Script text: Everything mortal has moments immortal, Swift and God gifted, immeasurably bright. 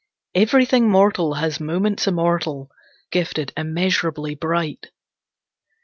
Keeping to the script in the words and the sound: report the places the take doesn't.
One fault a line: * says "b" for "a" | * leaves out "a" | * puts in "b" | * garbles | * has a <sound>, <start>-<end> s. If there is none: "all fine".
* leaves out "Swift and God"